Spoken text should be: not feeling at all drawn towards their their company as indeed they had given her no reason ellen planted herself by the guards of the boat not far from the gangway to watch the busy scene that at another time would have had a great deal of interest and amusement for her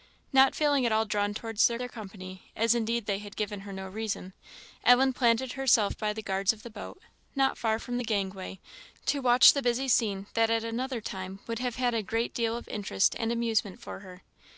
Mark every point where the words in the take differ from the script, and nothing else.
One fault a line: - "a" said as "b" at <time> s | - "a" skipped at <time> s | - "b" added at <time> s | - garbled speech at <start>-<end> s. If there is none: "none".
none